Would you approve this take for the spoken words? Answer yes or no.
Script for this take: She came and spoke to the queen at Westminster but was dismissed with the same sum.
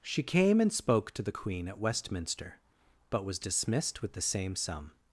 yes